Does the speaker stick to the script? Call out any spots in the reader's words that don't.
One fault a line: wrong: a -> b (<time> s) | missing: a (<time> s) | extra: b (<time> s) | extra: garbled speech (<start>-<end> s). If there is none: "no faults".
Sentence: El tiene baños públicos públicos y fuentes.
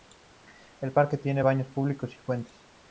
extra: parque (0.9 s)
missing: públicos (2.2 s)